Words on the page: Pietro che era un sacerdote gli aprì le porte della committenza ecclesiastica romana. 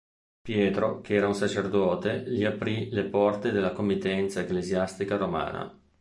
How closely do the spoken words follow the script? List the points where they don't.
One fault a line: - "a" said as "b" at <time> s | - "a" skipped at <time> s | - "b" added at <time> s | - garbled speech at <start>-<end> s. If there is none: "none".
none